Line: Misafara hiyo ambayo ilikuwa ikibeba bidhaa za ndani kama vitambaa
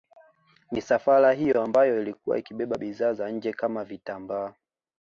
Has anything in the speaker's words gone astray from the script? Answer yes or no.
yes